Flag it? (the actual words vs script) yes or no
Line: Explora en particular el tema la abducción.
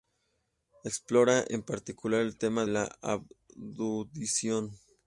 no